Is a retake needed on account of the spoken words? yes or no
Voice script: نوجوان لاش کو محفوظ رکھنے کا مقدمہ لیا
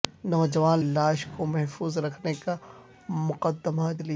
no